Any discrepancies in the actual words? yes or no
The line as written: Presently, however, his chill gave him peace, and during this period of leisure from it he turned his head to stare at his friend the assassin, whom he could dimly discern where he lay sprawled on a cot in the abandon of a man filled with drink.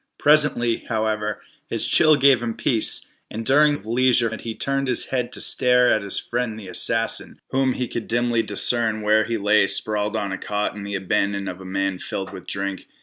yes